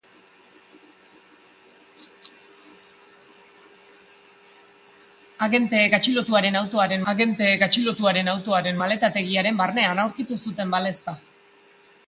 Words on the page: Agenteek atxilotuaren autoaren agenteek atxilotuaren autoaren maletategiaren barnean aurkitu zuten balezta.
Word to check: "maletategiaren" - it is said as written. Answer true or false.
true